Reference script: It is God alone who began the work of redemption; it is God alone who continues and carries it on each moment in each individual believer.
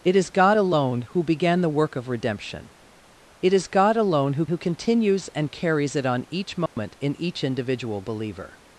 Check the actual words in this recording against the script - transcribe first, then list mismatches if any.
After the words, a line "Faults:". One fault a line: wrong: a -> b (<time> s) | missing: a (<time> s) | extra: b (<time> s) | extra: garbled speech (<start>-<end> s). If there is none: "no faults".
It is God alone who began the work of redemption; it is God alone who who continues and carries it on each moment in each individual believer.
Faults:
extra: who (4.5 s)